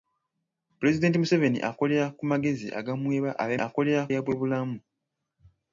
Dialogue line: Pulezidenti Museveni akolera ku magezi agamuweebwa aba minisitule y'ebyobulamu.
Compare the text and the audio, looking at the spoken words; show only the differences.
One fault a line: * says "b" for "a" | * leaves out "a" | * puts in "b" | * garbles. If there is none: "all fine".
* says "akolera" for "minisitule"